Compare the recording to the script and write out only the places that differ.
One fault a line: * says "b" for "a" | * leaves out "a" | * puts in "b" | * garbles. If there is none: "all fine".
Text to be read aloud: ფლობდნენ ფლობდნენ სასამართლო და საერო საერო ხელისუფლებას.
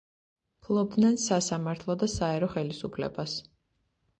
* leaves out "ფლობდნენ"
* leaves out "საერო"